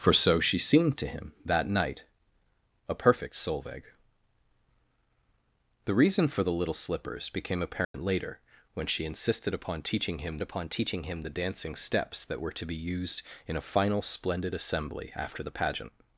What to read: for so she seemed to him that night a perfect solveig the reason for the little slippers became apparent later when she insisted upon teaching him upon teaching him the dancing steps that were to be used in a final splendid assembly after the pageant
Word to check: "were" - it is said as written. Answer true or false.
true